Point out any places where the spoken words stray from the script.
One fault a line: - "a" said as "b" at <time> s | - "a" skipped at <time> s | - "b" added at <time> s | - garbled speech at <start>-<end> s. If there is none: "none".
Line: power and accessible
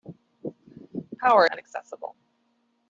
none